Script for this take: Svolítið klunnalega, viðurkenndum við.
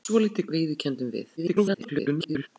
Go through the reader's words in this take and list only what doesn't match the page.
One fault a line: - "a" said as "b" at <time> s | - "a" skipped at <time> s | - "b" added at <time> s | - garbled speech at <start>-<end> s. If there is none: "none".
- "klunnalega" skipped at 0.5 s
- garbled speech at 1.4-2.5 s